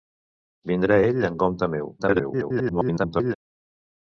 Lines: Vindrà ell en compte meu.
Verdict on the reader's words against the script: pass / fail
fail